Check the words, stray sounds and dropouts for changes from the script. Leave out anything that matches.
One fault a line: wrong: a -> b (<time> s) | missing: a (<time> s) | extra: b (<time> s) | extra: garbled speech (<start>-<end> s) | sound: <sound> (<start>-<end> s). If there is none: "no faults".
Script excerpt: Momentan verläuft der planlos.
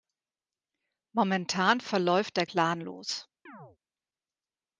sound: chirp (3.5-3.8 s)